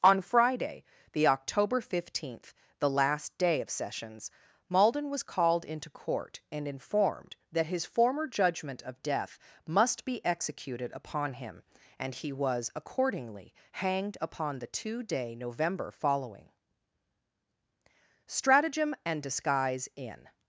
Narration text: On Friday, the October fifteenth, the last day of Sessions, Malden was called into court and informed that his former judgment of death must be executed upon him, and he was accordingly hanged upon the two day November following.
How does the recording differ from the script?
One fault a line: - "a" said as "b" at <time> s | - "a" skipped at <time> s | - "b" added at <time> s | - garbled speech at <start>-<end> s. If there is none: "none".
- "Stratagem and disguise in" added at 18.3 s